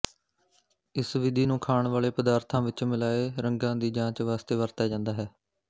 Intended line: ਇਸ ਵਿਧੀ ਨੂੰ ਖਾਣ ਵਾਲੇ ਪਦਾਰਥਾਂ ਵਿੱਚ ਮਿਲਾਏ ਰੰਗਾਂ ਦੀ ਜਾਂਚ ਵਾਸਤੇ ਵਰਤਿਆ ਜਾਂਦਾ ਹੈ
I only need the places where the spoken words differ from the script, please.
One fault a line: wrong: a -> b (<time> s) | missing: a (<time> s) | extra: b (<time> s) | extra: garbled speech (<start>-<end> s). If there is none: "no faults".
no faults